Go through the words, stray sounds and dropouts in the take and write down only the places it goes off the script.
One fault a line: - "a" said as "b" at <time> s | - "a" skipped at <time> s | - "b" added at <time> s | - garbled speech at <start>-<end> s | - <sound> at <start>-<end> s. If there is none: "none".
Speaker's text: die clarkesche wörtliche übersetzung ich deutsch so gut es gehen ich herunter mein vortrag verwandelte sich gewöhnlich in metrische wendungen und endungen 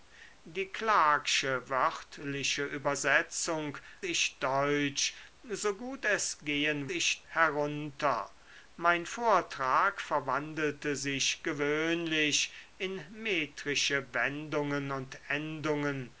none